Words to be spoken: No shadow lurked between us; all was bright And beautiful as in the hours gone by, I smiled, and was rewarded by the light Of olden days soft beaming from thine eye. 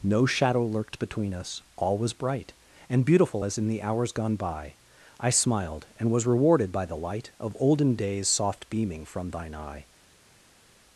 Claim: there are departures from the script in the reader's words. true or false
false